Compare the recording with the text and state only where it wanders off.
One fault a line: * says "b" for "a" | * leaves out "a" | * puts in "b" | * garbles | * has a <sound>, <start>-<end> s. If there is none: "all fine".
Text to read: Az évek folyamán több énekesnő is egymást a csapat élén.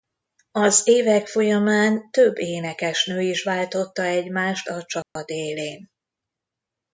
* puts in "váltotta"
* has a dropout, 5.0-5.2 s